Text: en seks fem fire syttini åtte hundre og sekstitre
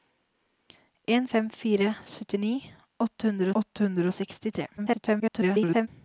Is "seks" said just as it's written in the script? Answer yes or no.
no